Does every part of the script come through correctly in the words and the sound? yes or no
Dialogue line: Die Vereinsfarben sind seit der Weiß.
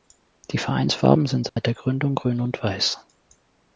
no